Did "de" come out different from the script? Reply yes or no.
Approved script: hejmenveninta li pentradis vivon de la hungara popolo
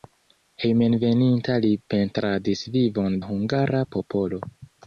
yes